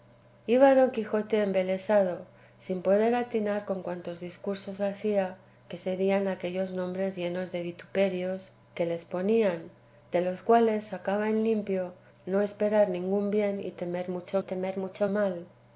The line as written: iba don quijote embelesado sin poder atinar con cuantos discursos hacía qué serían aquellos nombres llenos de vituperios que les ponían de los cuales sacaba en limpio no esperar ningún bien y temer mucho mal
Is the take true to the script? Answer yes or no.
no